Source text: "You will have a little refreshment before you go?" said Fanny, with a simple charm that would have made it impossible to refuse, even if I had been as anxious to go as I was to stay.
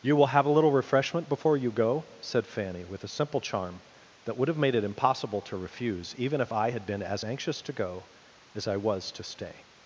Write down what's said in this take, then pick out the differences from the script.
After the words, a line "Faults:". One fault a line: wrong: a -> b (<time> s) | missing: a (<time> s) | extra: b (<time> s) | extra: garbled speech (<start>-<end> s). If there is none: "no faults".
"You will have a little refreshment before you go?" said Fanny, with a simple charm that would have made it impossible to refuse, even if I had been as anxious to go as I was to stay.
Faults:
no faults